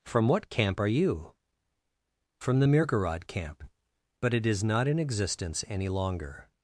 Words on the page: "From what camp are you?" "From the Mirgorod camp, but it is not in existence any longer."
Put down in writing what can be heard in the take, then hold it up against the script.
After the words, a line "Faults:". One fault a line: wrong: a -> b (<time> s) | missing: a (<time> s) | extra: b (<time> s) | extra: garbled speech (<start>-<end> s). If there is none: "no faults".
"From what camp are you?" "From the Mirgorod camp, but it is not in existence any longer."
Faults:
no faults